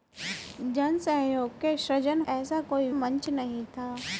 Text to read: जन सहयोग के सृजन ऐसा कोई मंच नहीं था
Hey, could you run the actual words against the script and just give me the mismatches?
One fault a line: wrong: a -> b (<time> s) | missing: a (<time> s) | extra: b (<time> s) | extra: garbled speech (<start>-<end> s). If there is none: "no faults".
no faults